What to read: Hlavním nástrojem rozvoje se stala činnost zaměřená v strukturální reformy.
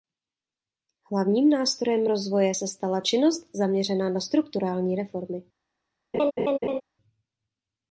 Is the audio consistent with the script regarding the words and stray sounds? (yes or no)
no